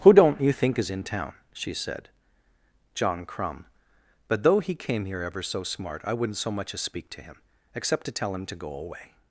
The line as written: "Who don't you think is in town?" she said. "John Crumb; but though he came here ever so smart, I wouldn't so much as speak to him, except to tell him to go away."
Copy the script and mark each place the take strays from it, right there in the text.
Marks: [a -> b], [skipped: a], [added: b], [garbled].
"Who don't you think is in town?" she said. "John Crumb; but though he came here ever so smart, I wouldn't so much as speak to him, except to tell him to go away."